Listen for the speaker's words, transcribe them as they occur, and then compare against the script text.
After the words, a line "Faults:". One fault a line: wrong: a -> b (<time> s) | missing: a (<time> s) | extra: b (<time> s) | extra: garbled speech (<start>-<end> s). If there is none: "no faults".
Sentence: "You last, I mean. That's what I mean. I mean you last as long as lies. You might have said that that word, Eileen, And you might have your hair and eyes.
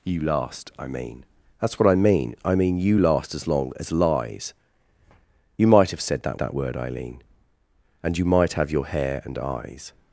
"You last, I mean. That's what I mean. I mean you last as long as lies. You might have said that that word, Eileen, And you might have your hair and eyes.
Faults:
no faults